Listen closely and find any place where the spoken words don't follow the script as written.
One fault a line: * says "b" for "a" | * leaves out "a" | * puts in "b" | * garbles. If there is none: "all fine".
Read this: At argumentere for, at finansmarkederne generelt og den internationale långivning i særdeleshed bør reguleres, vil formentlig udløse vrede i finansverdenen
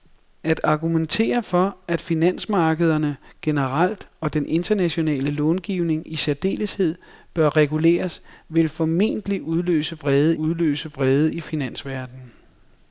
* puts in "udløse vrede"